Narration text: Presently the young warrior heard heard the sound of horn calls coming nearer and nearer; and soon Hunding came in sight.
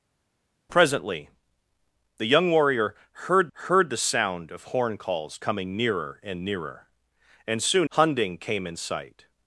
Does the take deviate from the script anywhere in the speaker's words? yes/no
no